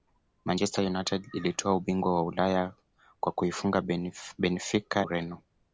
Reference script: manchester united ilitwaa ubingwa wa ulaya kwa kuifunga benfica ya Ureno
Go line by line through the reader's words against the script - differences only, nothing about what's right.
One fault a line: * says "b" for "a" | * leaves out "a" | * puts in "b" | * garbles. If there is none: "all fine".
* leaves out "ya"